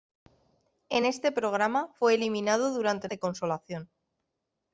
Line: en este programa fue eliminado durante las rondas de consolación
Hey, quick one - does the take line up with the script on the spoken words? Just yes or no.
no